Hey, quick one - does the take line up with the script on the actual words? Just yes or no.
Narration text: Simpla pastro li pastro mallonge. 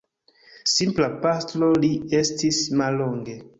no